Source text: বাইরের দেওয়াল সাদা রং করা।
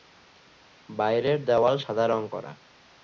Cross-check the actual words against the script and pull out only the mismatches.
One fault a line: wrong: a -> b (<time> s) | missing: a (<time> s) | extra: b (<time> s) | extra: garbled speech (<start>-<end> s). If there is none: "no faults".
no faults